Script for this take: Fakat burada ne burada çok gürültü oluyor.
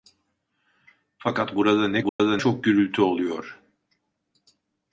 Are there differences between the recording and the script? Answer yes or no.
no